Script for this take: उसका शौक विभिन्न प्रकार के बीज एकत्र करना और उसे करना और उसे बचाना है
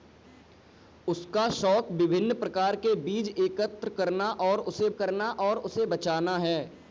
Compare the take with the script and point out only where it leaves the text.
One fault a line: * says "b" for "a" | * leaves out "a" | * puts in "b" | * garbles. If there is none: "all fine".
all fine